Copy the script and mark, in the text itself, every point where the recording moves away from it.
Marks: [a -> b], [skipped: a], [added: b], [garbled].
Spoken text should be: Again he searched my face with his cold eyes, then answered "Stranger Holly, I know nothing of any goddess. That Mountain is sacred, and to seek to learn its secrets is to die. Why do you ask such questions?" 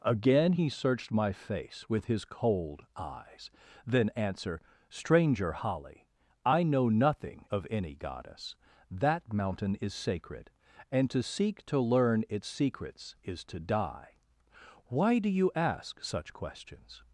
Again he searched my face with his cold eyes, then [answered -> answer] "Stranger Holly, I know nothing of any goddess. That Mountain is sacred, and to seek to learn its secrets is to die. Why do you ask such questions?"